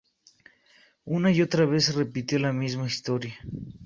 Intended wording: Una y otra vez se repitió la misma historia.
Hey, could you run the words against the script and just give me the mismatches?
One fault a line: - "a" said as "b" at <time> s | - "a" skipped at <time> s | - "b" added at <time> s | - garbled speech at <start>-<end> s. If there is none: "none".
none